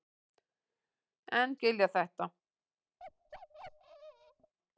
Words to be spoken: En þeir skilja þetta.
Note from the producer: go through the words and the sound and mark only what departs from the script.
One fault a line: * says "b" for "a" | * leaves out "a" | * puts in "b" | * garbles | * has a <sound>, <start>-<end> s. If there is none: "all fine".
* leaves out "þeir"
* has a bark, 3.0-4.5 s